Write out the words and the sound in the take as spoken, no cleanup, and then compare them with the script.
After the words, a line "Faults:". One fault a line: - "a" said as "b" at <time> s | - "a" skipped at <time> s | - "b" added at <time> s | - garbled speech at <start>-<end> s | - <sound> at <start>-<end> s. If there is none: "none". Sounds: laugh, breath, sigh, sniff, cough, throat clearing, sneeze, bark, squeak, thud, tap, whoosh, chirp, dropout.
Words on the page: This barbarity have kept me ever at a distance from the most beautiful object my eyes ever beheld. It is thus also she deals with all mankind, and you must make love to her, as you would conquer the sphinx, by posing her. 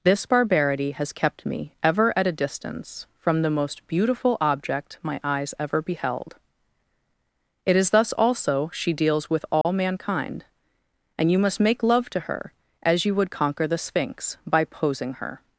This barbarity has kept me ever at a distance from the most beautiful object my eyes ever beheld. It is thus also she deals with all mankind, and you must make love to her, as you would conquer the sphinx, by posing her.
Faults:
- "have" said as "has" at 0.9 s
- dropout at 9.6-9.7 s